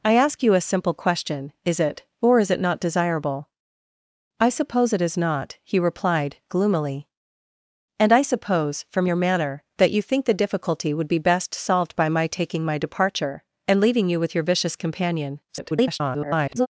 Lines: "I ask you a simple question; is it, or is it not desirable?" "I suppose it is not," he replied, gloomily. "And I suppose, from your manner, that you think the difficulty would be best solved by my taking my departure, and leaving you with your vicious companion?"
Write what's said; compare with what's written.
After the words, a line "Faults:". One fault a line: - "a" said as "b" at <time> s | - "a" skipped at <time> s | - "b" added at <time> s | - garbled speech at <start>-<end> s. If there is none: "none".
"I ask you a simple question; is it, or is it not desirable?" "I suppose it is not," he replied, gloomily. "And I suppose, from your manner, that you think the difficulty would be best solved by my taking my departure, and leaving you with your vicious companion?" [garbled]
Faults:
- garbled speech at 15.5-16.7 s